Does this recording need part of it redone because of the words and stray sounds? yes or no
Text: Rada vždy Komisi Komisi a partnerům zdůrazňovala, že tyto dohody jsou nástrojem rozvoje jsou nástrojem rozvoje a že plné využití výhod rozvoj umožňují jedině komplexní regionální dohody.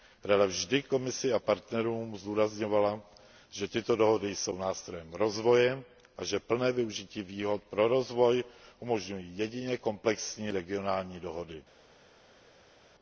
yes